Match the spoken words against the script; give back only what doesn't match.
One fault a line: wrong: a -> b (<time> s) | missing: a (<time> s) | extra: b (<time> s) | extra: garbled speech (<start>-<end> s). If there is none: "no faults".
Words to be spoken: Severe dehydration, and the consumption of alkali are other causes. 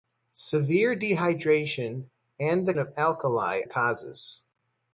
missing: consumption (2.7 s)
missing: are other (3.6 s)